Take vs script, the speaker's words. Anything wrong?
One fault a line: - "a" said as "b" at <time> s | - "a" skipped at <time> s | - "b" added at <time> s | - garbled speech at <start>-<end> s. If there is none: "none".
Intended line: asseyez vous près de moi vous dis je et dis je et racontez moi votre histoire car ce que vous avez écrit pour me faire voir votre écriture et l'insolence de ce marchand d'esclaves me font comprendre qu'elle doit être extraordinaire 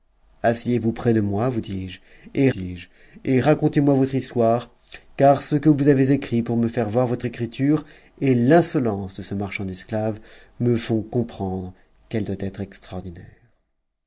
none